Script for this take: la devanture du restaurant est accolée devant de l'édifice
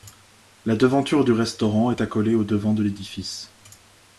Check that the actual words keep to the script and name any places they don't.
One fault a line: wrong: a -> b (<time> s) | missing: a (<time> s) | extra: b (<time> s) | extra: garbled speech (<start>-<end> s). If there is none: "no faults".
extra: au (2.3 s)